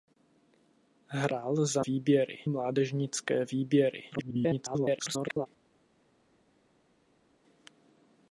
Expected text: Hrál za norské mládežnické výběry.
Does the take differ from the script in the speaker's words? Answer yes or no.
yes